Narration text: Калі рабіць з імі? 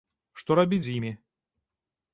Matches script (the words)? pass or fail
fail